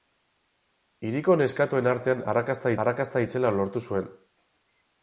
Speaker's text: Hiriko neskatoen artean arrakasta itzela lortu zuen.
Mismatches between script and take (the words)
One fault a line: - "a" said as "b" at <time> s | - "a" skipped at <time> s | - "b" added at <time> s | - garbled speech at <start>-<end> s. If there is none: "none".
- "arrakasta" added at 2.8 s